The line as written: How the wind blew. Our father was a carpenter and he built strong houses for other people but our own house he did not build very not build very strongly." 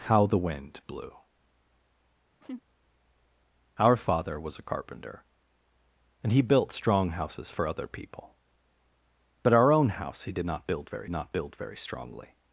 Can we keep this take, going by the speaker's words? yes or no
yes